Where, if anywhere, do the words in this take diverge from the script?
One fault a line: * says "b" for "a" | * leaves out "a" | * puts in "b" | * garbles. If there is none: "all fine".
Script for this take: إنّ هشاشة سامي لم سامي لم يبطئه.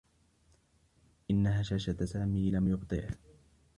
* leaves out "سامي لم"